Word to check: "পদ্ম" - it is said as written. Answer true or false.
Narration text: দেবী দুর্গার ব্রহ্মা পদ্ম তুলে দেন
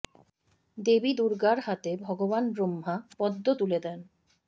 true